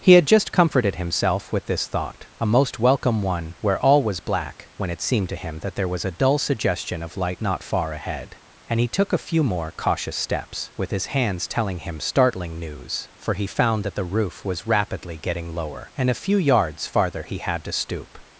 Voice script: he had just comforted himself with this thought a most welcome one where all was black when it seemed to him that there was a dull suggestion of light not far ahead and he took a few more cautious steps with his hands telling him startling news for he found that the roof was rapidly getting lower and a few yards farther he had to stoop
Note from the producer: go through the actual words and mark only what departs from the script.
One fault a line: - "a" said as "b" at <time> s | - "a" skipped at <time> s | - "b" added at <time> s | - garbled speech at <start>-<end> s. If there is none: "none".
none